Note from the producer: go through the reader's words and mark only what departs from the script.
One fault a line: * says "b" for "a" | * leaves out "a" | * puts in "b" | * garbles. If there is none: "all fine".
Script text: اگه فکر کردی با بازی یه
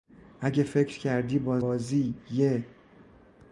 all fine